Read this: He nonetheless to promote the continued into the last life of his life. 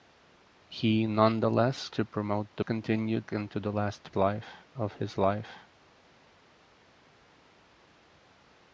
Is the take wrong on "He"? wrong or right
right